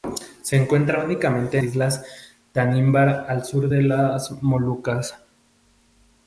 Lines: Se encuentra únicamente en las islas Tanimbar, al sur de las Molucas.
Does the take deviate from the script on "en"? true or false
true